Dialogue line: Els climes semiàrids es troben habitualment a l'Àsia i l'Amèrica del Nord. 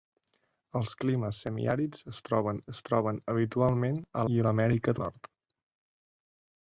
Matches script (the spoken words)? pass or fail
fail